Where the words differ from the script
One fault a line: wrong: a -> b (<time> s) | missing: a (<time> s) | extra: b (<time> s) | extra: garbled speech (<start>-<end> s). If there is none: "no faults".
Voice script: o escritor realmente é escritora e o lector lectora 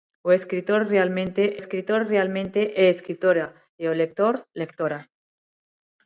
extra: escritor realmente (1.6 s)